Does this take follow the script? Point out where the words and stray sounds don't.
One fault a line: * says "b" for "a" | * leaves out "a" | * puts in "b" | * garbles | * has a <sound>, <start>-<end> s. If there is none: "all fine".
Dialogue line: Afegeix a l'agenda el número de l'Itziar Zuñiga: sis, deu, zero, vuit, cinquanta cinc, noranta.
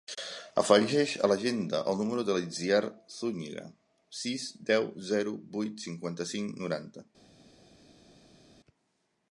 all fine